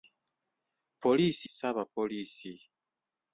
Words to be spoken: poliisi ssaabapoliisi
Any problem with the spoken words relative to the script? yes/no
no